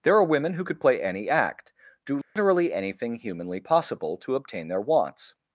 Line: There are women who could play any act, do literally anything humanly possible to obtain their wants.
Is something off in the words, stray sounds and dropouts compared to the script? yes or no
yes